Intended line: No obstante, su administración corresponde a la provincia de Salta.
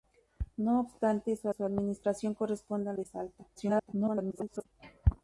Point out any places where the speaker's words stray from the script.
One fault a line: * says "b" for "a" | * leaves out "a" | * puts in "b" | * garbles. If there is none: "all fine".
* puts in "su"
* leaves out "la provincia"
* garbles